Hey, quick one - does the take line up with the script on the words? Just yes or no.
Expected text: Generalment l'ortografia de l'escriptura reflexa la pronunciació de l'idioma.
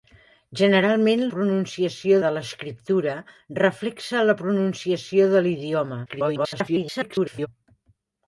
no